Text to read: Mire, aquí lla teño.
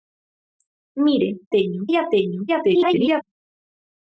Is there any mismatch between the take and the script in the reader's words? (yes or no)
yes